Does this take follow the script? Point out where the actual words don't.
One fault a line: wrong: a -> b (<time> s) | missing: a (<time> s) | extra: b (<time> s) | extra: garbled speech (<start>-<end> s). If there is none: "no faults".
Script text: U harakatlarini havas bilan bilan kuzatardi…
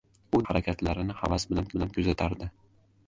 no faults